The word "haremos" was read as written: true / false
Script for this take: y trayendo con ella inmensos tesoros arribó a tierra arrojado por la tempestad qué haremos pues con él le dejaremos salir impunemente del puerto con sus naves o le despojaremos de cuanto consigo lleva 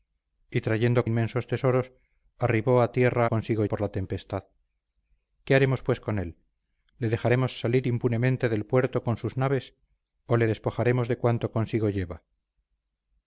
true